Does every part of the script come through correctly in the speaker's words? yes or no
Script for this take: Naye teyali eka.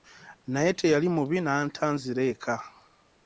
no